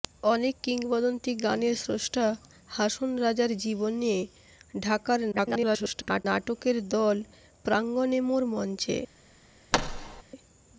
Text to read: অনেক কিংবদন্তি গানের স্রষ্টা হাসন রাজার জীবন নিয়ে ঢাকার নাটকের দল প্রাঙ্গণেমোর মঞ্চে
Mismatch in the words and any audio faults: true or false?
true